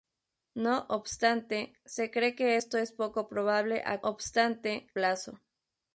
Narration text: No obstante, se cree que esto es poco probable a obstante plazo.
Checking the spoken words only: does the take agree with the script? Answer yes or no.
yes